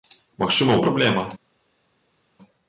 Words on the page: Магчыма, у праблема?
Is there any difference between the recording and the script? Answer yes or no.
no